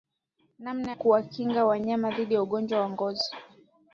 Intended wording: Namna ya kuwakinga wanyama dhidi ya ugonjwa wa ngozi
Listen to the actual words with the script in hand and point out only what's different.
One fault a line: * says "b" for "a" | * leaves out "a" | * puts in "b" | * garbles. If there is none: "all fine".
* leaves out "ya"